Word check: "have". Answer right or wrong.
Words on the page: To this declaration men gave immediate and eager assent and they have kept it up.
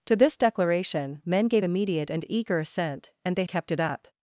wrong